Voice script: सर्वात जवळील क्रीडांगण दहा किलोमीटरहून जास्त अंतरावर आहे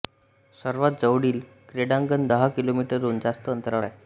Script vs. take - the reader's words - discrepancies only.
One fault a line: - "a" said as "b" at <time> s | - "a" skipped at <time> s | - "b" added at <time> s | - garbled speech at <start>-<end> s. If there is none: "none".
none